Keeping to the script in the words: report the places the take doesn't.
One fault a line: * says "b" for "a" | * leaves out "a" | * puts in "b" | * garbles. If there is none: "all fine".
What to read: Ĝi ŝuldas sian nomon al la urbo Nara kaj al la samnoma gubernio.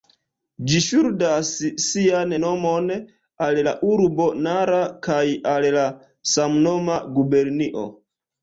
all fine